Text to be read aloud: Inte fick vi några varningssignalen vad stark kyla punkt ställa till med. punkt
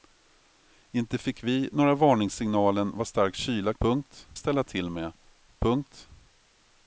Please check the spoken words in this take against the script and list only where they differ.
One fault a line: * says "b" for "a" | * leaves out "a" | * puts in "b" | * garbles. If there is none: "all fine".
all fine